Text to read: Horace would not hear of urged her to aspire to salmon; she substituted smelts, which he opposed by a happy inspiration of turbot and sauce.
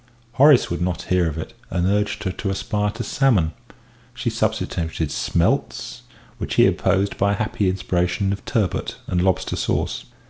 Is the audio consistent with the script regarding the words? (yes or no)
no